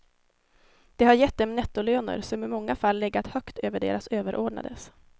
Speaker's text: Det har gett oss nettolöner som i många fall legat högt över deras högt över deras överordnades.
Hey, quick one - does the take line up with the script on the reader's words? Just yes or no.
no